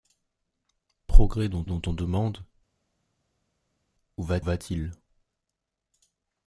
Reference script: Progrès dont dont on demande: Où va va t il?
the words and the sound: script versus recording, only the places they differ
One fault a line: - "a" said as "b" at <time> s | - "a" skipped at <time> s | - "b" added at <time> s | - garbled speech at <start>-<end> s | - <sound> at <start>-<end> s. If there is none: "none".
none